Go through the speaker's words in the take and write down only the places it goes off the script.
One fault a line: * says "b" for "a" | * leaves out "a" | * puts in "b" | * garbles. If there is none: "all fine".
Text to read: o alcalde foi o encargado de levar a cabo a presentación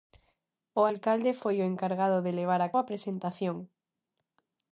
* leaves out "cabo"